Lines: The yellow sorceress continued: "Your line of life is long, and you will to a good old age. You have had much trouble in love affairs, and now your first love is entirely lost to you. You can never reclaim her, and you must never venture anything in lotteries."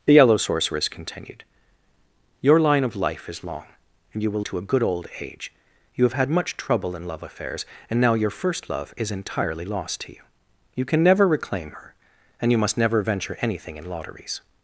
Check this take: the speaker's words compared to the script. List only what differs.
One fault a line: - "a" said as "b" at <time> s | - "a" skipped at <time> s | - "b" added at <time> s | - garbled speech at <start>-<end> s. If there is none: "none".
none